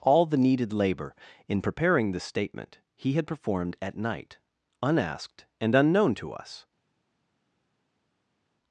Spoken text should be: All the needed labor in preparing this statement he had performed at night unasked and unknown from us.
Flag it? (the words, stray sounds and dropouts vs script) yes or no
yes